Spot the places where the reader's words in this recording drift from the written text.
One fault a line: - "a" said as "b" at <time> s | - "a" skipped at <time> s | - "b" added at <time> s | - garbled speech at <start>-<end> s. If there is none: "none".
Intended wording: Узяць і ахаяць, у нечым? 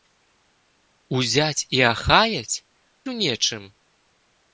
none